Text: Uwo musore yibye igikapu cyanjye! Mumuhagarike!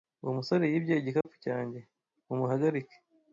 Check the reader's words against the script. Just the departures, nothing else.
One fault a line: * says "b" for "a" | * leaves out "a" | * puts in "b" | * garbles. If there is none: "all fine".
all fine